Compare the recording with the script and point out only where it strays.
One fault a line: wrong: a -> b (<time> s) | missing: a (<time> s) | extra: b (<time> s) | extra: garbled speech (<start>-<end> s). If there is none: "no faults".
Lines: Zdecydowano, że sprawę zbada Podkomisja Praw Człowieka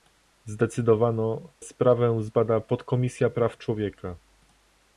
missing: że (1.5 s)